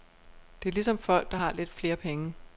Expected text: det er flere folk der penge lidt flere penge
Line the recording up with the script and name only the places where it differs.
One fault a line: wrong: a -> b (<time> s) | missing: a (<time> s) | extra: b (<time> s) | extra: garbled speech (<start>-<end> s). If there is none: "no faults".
wrong: flere -> ligesom (0.7 s)
wrong: penge -> har (1.4 s)